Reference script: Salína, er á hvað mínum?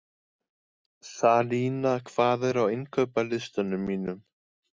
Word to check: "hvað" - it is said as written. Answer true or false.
false